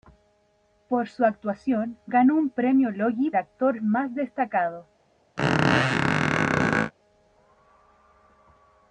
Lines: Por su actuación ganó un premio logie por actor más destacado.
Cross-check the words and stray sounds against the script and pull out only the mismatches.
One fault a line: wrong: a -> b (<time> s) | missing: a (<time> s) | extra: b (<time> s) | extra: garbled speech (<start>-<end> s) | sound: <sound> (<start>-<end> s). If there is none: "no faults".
missing: por (3.3 s)
sound: squeak (5.4-6.9 s)